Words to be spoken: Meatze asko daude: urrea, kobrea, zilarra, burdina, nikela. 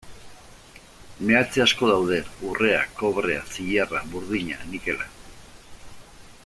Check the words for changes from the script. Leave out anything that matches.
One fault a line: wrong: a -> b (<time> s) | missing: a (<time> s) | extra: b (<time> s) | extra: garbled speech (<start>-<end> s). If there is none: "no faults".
no faults